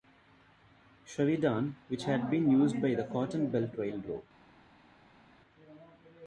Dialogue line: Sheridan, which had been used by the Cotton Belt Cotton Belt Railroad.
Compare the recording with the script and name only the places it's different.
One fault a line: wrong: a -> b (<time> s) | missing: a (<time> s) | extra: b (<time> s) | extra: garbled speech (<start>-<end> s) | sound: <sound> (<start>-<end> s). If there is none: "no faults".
missing: Cotton Belt (3.8 s)